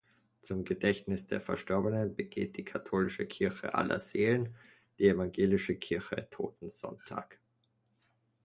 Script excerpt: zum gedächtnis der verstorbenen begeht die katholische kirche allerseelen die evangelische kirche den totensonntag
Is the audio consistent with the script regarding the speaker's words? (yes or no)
no